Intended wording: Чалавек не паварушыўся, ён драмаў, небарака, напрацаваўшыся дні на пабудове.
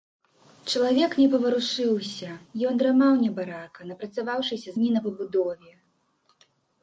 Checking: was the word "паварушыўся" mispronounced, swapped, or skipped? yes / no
no